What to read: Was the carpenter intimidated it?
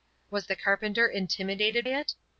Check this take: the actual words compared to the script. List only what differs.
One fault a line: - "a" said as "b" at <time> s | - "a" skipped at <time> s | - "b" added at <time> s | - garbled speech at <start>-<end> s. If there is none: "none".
none